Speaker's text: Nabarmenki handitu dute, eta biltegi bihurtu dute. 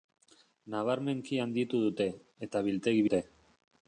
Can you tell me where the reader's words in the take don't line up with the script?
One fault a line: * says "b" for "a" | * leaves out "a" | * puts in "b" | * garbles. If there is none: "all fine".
* leaves out "bihurtu"